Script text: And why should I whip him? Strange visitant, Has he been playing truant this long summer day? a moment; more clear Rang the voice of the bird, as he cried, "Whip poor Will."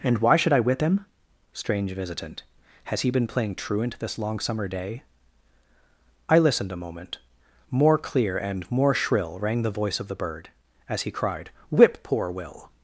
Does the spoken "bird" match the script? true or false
true